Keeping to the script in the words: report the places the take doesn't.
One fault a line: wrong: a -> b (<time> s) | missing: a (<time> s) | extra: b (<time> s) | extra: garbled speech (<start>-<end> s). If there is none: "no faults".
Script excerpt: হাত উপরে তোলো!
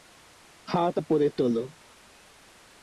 no faults